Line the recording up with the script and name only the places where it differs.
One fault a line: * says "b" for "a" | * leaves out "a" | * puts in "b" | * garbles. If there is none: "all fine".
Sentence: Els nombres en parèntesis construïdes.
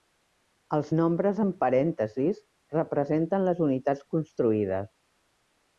* puts in "representen les unitats"